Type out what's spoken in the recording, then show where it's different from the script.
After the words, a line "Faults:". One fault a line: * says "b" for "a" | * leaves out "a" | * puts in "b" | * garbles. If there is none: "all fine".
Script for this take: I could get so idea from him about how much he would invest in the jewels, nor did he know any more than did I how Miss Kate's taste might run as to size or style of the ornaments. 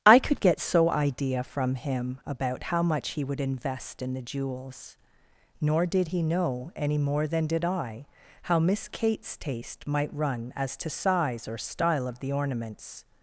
I could get so idea from him about how much he would invest in the jewels, nor did he know any more than did I how Miss Kate's taste might run as to size or style of the ornaments.
Faults:
all fine